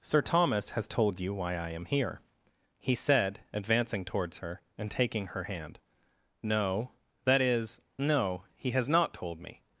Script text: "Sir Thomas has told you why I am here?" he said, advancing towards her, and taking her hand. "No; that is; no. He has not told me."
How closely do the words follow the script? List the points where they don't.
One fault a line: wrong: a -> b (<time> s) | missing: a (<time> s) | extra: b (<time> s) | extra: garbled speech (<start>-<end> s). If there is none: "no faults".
no faults